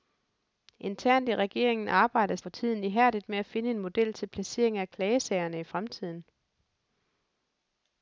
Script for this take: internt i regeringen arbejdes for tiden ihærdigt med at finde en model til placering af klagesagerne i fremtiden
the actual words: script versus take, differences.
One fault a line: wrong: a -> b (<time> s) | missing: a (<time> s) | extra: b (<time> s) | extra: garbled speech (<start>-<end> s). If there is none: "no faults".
no faults